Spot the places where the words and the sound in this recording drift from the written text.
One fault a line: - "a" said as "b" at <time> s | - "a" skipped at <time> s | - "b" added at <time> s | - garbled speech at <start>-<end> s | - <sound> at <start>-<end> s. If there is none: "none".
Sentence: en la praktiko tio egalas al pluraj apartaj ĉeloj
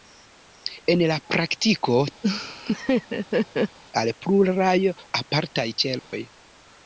- "tio egalas" skipped at 2.0 s
- laugh at 2.2-3.8 s
- dropout at 6.0-6.1 s